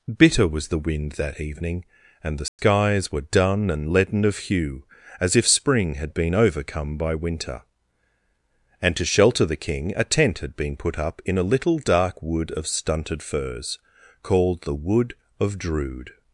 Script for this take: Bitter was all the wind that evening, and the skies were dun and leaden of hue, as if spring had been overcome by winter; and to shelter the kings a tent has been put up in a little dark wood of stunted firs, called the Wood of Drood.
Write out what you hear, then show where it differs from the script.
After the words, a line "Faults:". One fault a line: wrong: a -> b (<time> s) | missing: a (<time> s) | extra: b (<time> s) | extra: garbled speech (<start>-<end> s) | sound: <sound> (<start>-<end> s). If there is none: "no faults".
Bitter was the wind that evening, and the skies were dun and leaden of hue, as if spring had been overcome by winter; and to shelter the king a tent had been put up in a little dark wood of stunted firs, called the Wood of Drood.
Faults:
missing: all (0.7 s)
sound: dropout (2.5-2.6 s)
wrong: kings -> king (9.6 s)
wrong: has -> had (10.4 s)